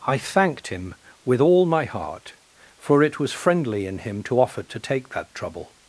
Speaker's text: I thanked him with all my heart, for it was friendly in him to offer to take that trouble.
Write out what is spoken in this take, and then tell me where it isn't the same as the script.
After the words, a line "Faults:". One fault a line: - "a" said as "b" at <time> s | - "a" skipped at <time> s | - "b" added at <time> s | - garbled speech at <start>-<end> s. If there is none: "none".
I thanked him with all my heart, for it was friendly in him to offer to take that trouble.
Faults:
none